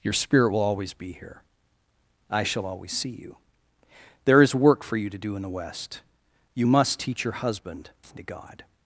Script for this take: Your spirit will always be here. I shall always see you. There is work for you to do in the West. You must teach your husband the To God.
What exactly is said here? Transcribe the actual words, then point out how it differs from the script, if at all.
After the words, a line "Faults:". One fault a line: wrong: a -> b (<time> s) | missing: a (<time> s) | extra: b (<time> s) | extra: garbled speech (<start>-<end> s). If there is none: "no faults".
Your spirit will always be here. I shall always see you. There is work for you to do in the West. You must teach your husband the To God.
Faults:
no faults